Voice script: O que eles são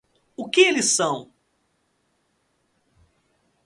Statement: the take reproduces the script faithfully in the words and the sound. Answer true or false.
true